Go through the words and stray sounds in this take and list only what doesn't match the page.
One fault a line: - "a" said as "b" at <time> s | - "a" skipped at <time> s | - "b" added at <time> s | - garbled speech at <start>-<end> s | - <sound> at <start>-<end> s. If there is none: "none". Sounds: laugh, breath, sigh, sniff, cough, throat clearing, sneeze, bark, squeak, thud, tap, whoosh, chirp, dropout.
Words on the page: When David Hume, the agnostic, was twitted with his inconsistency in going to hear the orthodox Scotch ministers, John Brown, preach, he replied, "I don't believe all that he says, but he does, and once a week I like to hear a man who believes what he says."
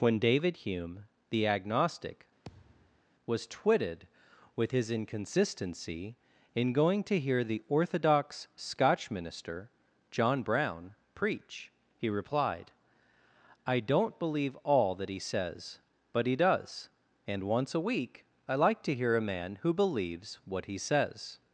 - thud at 2.4-3.0 s
- "ministers" said as "minister" at 9.1 s